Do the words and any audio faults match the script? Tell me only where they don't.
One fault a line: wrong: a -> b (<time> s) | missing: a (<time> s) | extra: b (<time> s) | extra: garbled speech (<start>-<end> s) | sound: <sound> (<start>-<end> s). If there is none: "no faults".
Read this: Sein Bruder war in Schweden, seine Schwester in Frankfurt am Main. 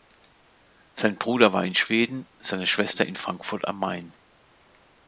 no faults